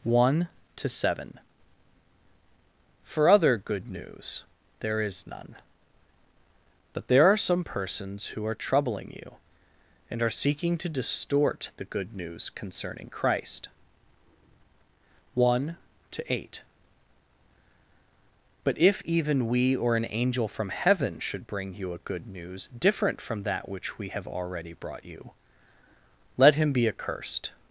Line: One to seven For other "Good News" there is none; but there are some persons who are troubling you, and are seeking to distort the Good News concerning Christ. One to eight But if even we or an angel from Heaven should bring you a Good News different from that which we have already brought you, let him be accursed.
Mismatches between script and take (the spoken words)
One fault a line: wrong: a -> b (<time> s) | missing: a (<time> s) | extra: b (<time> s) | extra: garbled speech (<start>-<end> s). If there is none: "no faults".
no faults